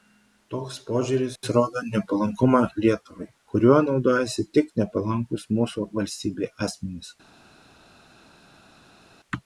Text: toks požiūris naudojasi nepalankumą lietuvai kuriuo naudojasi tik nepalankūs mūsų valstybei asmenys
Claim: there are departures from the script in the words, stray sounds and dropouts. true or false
true